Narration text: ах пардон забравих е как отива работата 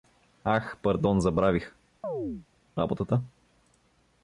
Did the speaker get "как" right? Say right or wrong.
wrong